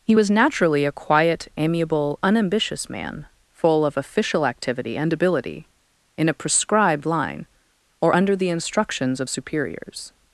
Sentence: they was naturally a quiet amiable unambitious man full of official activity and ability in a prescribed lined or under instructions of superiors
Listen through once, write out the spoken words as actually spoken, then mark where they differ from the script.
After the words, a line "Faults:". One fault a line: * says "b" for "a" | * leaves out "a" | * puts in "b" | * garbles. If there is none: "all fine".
he was naturally a quiet amiable unambitious man full of official activity and ability in a prescribed line or under the instructions of superiors
Faults:
* says "he" for "they"
* says "line" for "lined"
* puts in "the"